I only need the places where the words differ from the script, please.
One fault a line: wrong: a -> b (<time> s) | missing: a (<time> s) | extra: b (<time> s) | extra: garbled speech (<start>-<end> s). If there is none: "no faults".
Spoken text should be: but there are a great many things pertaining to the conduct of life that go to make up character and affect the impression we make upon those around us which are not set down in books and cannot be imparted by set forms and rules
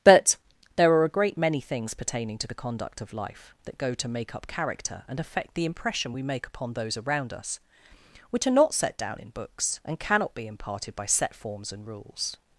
no faults